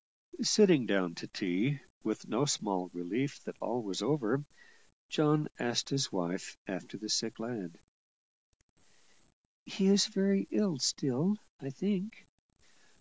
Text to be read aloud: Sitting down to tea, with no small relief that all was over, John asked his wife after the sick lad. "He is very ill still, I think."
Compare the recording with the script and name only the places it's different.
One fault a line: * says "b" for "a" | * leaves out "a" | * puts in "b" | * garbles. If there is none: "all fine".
all fine